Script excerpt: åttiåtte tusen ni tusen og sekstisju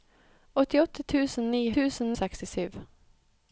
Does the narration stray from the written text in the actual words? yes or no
no